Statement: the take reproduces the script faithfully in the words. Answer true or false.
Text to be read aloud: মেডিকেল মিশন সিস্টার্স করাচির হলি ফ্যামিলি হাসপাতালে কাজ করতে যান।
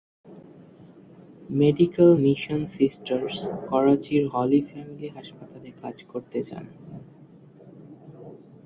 true